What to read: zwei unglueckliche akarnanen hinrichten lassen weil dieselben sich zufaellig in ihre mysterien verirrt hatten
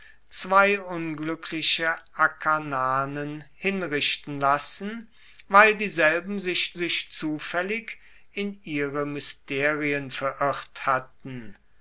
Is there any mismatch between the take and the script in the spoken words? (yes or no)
yes